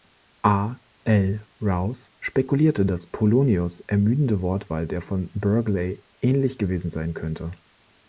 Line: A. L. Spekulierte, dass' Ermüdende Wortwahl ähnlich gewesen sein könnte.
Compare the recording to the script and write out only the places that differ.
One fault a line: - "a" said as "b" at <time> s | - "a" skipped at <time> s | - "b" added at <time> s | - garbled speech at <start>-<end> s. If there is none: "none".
- "Rowse" added at 1.6 s
- "Polonius" added at 3.0 s
- "der von Burghley" added at 4.9 s